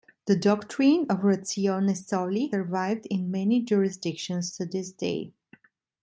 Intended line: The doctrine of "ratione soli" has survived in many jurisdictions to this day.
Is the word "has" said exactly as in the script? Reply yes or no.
no